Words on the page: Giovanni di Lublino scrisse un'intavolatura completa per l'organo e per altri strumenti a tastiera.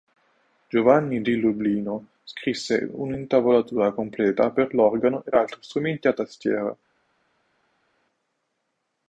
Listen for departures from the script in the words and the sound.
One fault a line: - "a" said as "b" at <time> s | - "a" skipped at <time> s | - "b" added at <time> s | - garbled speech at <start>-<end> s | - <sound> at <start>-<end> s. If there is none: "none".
- "per" skipped at 5.3 s